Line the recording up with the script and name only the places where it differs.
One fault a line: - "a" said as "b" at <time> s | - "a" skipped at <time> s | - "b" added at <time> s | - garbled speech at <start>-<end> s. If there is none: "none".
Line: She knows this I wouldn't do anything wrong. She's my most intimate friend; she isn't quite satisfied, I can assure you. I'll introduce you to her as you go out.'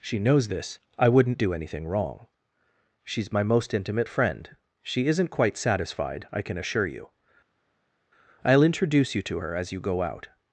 none